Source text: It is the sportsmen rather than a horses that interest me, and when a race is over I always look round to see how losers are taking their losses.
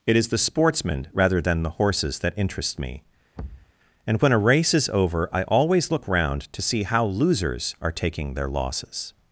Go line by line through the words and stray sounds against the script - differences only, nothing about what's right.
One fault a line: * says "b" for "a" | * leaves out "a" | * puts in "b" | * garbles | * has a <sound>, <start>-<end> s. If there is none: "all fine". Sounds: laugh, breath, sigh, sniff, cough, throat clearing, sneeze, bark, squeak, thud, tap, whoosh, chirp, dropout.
* says "the" for "a"
* has a thud, 3.4-3.7 s